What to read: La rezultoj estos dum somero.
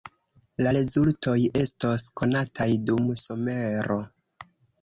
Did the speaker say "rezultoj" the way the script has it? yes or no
yes